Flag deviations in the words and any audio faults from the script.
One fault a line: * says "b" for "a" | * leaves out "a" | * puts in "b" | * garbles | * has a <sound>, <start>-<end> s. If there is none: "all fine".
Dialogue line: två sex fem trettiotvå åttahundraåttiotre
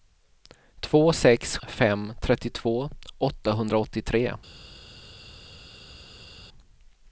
all fine